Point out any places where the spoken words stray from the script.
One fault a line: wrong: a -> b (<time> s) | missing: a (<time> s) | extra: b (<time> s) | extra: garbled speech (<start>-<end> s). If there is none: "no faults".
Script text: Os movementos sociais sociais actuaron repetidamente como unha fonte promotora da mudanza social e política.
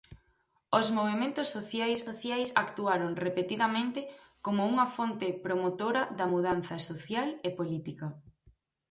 no faults